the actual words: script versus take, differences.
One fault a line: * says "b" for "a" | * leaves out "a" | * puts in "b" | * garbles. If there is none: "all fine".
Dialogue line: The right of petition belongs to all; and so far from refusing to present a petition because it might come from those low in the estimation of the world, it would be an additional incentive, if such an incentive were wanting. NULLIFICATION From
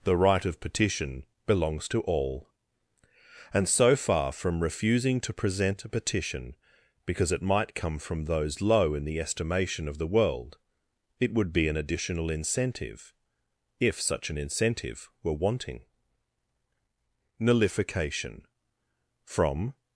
all fine